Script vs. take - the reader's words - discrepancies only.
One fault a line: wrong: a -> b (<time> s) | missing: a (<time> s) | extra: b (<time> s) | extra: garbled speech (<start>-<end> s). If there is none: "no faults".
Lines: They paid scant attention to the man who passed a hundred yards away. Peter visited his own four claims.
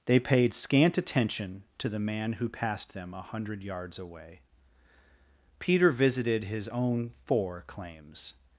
extra: them (2.9 s)